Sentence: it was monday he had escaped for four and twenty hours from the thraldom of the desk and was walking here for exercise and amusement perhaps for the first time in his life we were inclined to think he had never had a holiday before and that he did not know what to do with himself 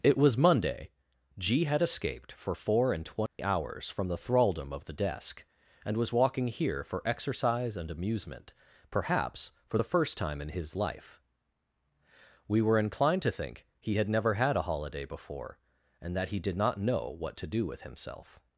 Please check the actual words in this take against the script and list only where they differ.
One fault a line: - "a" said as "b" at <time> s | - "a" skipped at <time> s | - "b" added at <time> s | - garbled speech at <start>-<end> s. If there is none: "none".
- "he" said as "g" at 1.4 s